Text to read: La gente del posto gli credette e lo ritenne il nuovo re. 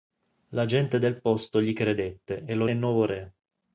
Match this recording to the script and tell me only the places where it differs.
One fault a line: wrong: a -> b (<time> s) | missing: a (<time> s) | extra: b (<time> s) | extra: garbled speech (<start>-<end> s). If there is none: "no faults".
missing: ritenne (2.6 s)